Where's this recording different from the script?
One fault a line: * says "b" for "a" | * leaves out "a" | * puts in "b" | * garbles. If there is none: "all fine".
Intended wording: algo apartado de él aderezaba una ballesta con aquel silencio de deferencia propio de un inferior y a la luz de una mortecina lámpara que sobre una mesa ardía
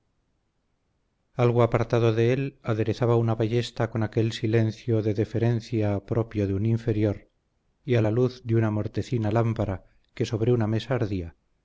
all fine